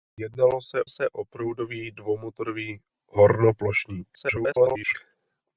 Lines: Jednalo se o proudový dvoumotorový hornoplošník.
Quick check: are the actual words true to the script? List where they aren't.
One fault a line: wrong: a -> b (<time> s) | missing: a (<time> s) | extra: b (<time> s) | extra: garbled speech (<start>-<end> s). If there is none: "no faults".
extra: se (0.9 s)
extra: garbled speech (4.1-4.9 s)